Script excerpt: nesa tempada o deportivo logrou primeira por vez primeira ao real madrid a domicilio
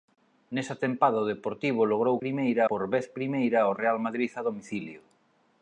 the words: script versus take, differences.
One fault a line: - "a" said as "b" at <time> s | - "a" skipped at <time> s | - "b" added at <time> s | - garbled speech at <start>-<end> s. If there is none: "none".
none